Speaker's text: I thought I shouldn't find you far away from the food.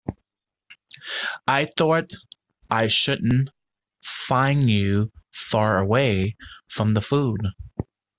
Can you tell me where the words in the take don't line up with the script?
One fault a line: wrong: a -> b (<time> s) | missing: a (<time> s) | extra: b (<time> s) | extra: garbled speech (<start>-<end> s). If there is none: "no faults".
no faults